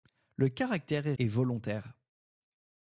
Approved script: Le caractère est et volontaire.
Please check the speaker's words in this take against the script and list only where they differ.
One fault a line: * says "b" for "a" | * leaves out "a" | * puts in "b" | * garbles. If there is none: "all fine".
all fine